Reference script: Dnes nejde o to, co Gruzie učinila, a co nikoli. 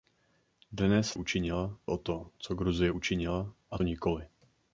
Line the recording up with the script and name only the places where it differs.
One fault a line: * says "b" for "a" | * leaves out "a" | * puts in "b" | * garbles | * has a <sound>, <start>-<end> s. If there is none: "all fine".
* says "učinila" for "nejde"
* leaves out "co"